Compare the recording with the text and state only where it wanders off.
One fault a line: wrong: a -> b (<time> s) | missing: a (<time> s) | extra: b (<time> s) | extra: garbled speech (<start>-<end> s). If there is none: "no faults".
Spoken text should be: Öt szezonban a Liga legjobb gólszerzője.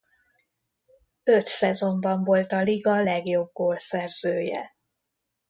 extra: volt (2.2 s)